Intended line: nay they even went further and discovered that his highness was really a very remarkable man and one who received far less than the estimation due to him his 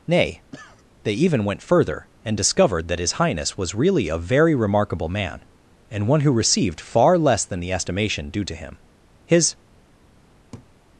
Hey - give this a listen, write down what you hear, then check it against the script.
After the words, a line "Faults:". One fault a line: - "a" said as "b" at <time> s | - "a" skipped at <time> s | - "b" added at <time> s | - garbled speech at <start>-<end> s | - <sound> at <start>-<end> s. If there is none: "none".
nay they even went further and discovered that his highness was really a very remarkable man and one who received far less than the estimation due to him his
Faults:
- cough at 0.5-0.9 s
- laugh at 10.5-10.7 s